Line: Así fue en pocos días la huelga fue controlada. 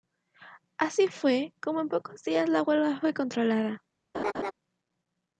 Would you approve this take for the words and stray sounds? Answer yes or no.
no